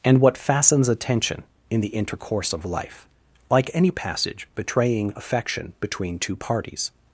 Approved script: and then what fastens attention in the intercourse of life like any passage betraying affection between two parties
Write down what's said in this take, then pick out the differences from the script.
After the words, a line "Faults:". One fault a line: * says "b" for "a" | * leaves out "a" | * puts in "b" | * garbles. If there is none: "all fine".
and what fastens attention in the intercourse of life like any passage betraying affection between two parties
Faults:
* leaves out "then"